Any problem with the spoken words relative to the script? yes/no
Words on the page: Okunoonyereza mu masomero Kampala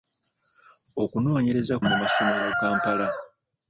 no